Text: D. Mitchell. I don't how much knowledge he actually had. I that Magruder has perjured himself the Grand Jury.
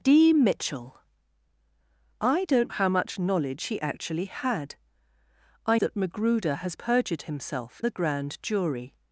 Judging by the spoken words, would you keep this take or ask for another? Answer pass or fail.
pass